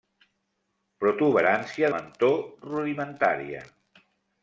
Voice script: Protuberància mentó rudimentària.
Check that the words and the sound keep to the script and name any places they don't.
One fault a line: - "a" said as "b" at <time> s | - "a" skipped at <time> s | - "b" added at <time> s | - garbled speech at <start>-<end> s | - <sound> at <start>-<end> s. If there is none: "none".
none